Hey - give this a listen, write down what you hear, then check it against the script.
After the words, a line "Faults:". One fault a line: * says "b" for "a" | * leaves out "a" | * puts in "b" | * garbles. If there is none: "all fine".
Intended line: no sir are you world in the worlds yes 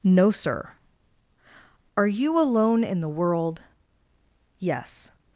no sir are you alone in the world yes
Faults:
* says "alone" for "world"
* says "world" for "worlds"